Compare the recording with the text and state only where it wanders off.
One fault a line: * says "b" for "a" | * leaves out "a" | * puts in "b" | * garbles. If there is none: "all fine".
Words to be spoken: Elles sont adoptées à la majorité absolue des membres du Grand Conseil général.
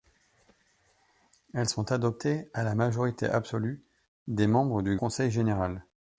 * leaves out "Grand"